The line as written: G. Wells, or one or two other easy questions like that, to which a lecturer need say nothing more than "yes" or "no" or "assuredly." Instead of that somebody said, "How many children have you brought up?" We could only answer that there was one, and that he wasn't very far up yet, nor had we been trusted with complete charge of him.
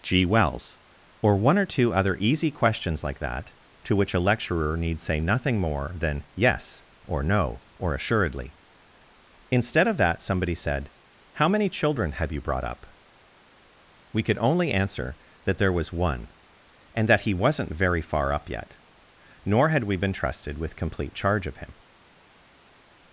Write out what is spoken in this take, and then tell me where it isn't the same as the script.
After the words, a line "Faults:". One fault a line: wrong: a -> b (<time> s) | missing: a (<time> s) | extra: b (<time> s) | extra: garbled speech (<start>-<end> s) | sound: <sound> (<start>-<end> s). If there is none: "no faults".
G. Wells, or one or two other easy questions like that, to which a lecturer need say nothing more than "yes" or "no" or "assuredly." Instead of that somebody said, "How many children have you brought up?" We could only answer that there was one, and that he wasn't very far up yet, nor had we been trusted with complete charge of him.
Faults:
no faults